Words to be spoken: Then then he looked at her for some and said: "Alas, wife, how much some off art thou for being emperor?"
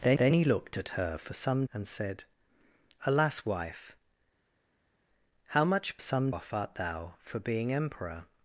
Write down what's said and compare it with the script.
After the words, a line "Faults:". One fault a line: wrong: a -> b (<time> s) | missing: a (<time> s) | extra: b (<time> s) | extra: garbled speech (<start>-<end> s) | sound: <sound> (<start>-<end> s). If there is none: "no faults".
Then then he looked at her for some and said: "Alas, wife, how much some off art thou for being emperor?"
Faults:
no faults